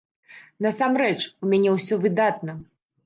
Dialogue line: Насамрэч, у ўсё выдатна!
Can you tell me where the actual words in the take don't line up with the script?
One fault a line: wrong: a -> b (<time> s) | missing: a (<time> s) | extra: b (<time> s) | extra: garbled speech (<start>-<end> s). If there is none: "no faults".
extra: мяне (1.5 s)